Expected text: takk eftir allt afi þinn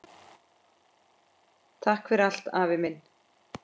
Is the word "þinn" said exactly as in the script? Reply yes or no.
no